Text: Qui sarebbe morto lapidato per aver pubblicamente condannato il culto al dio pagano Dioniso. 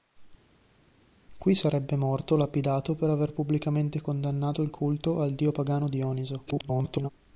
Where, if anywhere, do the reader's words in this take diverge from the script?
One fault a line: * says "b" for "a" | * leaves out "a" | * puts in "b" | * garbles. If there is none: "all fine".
* garbles